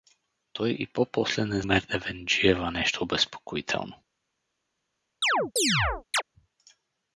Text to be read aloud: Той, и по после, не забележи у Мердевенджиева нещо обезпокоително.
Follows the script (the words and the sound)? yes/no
no